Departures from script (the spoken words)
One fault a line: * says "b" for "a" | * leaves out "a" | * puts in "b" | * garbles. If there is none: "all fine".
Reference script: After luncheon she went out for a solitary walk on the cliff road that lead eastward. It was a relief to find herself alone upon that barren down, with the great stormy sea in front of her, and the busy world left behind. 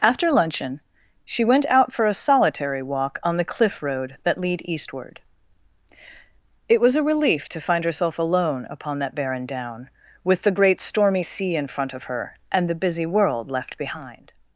all fine